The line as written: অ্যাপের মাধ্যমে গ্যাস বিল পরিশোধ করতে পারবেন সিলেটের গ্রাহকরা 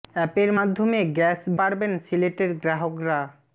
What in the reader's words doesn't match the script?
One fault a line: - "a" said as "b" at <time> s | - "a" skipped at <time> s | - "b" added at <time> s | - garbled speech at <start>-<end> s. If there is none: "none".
- "বিল পরিশোধ করতে" skipped at 1.4 s